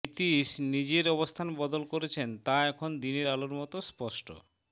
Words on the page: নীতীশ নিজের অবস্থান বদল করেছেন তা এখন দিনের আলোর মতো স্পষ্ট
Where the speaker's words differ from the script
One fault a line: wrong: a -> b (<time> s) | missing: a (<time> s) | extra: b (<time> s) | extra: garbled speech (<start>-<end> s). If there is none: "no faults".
no faults